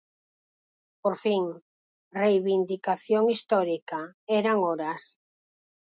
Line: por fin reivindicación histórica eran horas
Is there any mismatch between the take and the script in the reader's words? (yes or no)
no